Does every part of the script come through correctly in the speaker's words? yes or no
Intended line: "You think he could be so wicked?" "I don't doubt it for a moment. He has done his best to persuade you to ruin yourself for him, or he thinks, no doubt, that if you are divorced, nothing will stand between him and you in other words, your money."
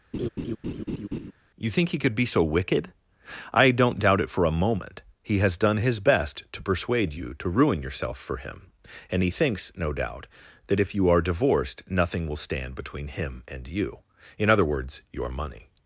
no